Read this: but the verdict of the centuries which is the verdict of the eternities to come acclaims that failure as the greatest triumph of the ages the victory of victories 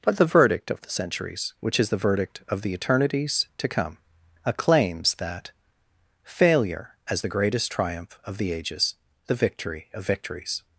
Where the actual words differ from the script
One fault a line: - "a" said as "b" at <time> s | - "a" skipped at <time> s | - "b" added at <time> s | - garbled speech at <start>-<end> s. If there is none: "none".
none